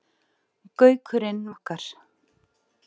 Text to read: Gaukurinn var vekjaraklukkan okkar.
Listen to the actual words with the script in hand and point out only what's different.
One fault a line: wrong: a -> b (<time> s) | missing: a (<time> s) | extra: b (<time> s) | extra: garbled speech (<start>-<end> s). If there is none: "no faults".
missing: var vekjaraklukkan (1.4 s)